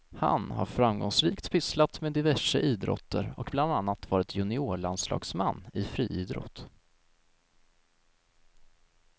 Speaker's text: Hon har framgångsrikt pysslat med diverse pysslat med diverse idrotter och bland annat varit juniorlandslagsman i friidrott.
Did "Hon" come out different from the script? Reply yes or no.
yes